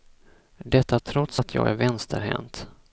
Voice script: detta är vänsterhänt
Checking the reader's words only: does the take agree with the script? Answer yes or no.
no